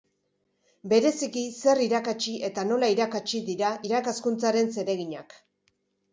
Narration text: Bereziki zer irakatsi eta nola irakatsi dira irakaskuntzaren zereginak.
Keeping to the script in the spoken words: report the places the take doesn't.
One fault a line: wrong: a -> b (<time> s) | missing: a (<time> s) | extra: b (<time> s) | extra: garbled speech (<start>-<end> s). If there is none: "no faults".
no faults